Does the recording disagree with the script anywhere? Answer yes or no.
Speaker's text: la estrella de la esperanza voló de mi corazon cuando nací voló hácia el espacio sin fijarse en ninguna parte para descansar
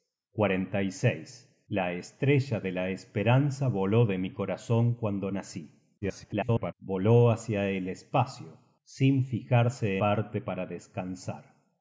yes